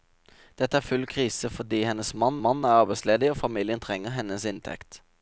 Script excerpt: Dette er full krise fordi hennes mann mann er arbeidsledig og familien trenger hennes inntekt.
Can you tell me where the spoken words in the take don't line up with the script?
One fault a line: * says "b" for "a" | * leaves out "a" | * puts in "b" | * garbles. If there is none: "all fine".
all fine